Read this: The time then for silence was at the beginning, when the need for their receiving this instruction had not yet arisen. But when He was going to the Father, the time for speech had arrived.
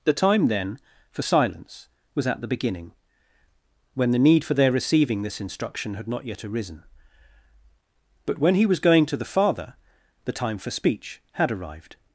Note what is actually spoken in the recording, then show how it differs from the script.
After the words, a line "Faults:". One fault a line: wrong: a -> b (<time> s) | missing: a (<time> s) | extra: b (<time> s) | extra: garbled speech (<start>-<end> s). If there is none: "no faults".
The time then for silence was at the beginning, when the need for their receiving this instruction had not yet arisen. But when He was going to the Father, the time for speech had arrived.
Faults:
no faults